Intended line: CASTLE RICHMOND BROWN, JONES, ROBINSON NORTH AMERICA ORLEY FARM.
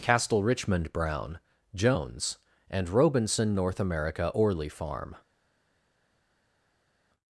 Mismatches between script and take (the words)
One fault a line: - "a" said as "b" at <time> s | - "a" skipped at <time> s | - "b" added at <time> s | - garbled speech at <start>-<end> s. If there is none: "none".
- "AND" added at 2.7 s